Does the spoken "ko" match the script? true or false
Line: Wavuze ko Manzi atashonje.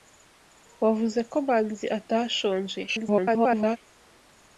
true